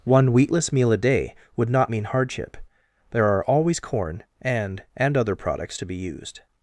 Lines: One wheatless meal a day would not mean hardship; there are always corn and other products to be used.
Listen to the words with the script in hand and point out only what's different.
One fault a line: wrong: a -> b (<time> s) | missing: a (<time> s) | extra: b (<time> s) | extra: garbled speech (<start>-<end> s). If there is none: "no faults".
extra: and (4.9 s)